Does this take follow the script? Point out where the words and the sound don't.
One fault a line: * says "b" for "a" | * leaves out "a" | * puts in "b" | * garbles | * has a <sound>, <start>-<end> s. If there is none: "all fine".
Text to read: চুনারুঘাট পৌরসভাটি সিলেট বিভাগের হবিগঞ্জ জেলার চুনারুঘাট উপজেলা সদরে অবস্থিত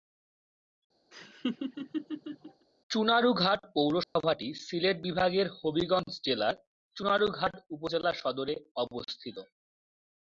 * has a laugh, 1.1-2.7 s
* has a dropout, 4.0-4.2 s